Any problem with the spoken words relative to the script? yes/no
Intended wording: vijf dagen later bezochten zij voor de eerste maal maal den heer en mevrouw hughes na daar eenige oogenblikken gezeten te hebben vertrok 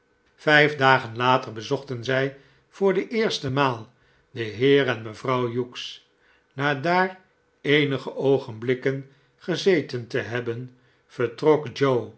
yes